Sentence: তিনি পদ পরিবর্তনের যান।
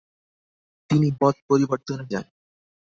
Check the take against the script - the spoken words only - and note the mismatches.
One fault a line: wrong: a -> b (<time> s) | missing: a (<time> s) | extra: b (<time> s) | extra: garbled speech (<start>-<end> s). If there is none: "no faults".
no faults